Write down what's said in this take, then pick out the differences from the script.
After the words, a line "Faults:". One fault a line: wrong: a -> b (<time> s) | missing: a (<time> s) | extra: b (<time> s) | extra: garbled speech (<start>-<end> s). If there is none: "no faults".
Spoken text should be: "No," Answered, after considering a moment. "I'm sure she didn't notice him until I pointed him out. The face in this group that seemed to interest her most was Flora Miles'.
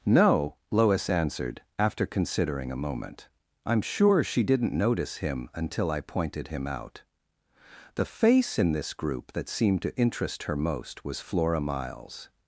"No," Lois answered, after considering a moment. "I'm sure she didn't notice him until I pointed him out. The face in this group that seemed to interest her most was Flora Miles'.
Faults:
extra: Lois (0.7 s)